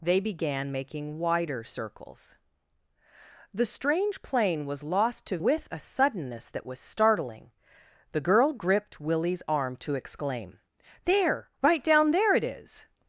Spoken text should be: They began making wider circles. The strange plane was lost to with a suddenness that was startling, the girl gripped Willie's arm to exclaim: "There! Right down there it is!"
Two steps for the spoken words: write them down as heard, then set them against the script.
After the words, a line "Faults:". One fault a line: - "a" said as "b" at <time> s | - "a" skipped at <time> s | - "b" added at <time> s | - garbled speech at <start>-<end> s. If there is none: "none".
They began making wider circles. The strange plane was lost to with a suddenness that was startling, the girl gripped Willie's arm to exclaim: "There! Right down there it is!"
Faults:
none